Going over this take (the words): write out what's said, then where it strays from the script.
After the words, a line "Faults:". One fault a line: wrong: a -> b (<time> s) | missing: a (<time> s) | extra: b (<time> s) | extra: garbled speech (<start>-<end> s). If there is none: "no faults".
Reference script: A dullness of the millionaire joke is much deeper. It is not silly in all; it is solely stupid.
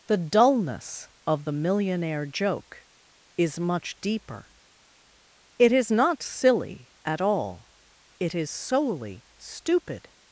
The dullness of the millionaire joke is much deeper. It is not silly at all; it is solely stupid.
Faults:
wrong: A -> The (0.1 s)
wrong: in -> at (7.0 s)